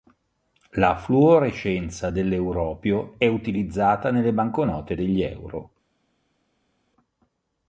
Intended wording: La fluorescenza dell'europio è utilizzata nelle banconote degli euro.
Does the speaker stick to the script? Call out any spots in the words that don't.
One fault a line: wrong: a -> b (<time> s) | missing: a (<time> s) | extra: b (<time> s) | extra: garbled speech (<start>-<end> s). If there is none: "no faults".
no faults